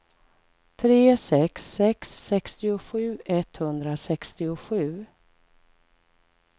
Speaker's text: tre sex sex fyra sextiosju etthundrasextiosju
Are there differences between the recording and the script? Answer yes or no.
yes